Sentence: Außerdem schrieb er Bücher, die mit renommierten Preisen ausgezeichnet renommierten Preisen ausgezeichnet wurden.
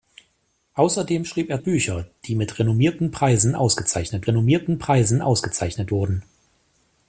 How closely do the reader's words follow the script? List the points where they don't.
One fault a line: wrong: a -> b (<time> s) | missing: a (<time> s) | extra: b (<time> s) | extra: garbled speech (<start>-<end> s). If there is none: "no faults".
no faults